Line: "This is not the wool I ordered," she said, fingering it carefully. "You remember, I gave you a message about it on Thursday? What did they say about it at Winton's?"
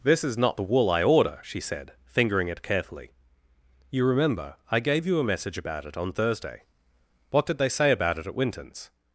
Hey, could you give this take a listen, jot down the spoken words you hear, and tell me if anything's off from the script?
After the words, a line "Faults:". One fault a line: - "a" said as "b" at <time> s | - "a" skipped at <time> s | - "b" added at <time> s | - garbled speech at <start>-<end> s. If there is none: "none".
"This is not the wool I order," she said, fingering it carefully. "You remember, I gave you a message about it on Thursday? What did they say about it at Winton's?"
Faults:
- "ordered" said as "order" at 1.0 s